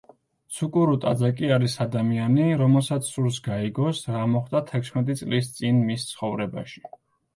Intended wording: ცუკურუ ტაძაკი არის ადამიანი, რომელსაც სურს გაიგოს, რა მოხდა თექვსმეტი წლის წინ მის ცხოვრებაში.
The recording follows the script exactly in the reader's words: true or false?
true